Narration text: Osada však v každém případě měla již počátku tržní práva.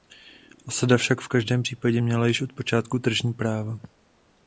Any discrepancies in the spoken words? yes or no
yes